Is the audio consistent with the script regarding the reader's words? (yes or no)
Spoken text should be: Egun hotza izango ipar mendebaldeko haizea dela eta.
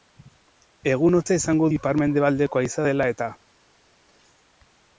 yes